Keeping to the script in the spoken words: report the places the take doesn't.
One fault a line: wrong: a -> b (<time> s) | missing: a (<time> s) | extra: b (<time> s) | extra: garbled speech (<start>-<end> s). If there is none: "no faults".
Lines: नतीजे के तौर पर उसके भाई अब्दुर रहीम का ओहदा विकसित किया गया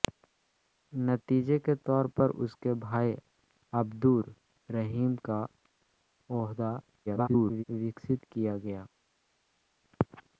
extra: garbled speech (7.1-7.6 s)